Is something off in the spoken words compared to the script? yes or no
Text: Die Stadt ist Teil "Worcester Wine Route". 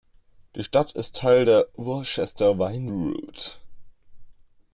yes